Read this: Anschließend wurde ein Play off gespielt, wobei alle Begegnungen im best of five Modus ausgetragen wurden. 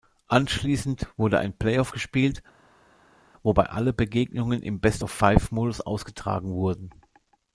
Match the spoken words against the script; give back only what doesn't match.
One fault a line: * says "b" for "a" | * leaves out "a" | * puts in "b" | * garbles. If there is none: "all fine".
all fine